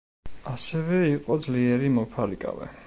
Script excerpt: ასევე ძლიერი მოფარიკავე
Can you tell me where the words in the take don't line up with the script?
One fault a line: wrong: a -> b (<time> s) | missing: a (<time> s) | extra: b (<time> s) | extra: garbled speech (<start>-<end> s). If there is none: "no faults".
extra: იყო (1.1 s)